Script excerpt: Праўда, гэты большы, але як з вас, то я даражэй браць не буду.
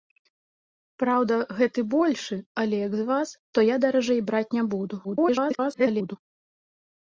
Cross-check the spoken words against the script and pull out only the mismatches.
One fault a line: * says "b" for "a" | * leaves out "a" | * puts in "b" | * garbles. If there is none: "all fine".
* garbles